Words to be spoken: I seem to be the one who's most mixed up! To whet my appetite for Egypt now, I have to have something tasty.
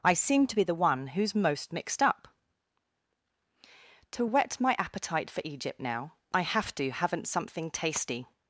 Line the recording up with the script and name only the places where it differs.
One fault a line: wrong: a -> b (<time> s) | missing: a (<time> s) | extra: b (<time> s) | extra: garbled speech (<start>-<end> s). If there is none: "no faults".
wrong: have -> haven't (6.9 s)